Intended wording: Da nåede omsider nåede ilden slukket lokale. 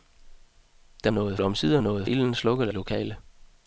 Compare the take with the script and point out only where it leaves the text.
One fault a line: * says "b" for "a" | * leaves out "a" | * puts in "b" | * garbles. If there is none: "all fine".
all fine